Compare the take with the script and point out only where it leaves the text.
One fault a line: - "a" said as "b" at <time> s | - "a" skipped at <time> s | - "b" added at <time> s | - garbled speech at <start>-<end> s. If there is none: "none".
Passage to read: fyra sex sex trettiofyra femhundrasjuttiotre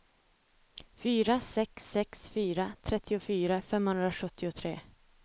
- "fyra" added at 2.3 s